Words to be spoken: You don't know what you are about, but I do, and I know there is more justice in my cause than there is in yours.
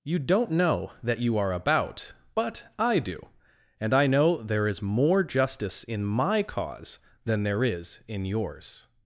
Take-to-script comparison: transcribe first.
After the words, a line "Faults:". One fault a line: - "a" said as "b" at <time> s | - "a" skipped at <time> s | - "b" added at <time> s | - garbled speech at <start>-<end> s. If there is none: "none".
You don't know that you are about, but I do, and I know there is more justice in my cause than there is in yours.
Faults:
- "what" said as "that" at 1.0 s